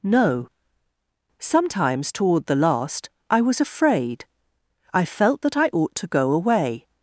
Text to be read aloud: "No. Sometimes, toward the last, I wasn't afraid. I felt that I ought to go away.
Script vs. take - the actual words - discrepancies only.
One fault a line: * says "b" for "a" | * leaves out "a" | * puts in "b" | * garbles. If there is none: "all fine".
* says "was" for "wasn't"